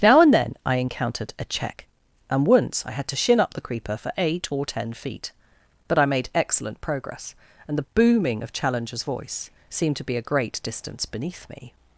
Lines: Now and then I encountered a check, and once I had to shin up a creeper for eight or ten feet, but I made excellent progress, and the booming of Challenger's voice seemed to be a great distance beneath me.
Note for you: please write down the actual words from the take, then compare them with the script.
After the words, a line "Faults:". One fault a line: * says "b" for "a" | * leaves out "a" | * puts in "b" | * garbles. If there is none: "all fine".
Now and then I encountered a check, and once I had to shin up the creeper for eight or ten feet, but I made excellent progress, and the booming of Challenger's voice seemed to be a great distance beneath me.
Faults:
* says "the" for "a"